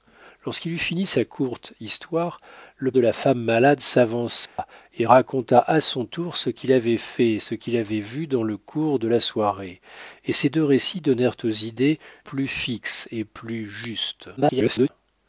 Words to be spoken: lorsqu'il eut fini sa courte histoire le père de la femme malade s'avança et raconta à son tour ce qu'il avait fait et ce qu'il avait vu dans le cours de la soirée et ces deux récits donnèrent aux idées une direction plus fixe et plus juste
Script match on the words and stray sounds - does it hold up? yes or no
no